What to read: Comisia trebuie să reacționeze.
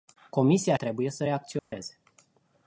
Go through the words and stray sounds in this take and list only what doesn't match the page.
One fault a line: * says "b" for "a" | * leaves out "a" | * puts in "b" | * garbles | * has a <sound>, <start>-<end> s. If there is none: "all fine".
* has a dropout, 1.6-1.7 s